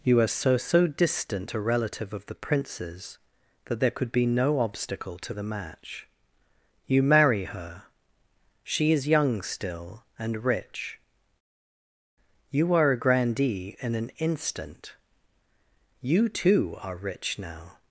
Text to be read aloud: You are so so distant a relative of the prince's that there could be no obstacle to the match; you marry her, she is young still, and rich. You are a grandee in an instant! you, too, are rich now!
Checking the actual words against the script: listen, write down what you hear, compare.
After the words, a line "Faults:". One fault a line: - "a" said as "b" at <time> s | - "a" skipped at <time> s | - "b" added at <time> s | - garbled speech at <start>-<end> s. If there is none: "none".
You are so so distant a relative of the prince's that there could be no obstacle to the match; you marry her, she is young still, and rich. You are a grandee in an instant! you, too, are rich now!
Faults:
none